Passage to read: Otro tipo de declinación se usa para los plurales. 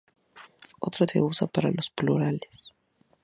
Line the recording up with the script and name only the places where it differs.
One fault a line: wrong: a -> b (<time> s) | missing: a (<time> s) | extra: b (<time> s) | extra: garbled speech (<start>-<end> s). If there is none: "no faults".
missing: tipo de declinación (1.1 s)